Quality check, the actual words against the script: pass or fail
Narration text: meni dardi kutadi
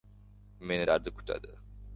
pass